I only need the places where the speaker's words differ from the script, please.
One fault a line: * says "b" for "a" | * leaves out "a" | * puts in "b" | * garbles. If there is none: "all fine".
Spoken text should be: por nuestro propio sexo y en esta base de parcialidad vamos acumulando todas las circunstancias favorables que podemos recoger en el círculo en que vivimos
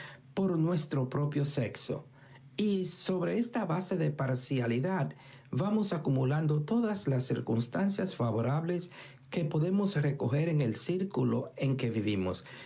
* says "sobre" for "en"